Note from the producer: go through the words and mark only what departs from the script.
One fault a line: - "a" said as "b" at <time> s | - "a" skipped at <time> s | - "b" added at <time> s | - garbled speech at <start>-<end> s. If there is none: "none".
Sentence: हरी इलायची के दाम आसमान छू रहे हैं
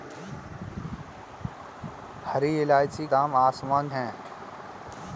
- "के" skipped at 3.0 s
- "छू रहे" skipped at 3.9 s